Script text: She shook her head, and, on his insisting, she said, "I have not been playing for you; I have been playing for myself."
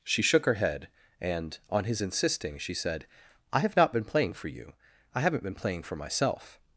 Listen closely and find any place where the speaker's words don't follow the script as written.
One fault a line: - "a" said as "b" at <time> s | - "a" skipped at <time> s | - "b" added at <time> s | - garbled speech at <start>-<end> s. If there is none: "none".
- "have" said as "haven't" at 5.2 s